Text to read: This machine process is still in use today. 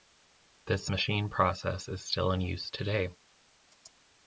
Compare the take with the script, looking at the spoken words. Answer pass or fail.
pass